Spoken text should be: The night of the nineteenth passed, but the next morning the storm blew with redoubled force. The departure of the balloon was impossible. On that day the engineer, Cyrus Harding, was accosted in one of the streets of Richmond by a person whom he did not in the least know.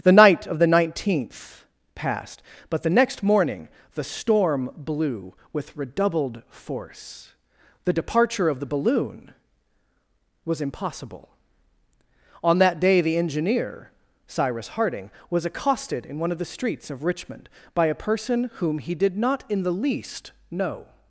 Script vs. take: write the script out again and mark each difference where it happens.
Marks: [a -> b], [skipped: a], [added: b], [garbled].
The night of the nineteenth passed, but the next morning the storm blew with redoubled force. The departure of the balloon was impossible. On that day the engineer, Cyrus Harding, was accosted in one of the streets of Richmond by a person whom he did not in the least know.